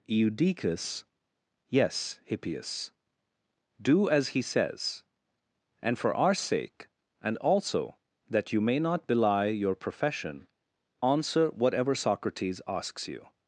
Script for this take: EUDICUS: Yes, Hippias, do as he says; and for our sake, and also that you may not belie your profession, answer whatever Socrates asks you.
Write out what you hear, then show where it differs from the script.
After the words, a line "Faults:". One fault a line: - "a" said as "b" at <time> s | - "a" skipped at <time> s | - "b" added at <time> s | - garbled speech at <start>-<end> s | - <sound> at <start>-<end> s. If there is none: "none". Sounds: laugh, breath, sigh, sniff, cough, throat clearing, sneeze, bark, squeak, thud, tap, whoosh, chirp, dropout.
EUDICUS: Yes, Hippias, do as he says; and for our sake, and also that you may not belie your profession, answer whatever Socrates asks you.
Faults:
none